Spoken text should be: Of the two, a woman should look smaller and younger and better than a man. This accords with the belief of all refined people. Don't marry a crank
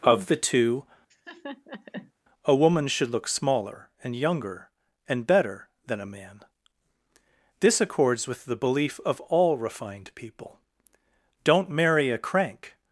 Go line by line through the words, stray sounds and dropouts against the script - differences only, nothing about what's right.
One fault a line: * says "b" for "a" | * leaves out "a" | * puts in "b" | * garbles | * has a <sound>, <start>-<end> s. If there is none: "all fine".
* has a laugh, 1.1-2.1 s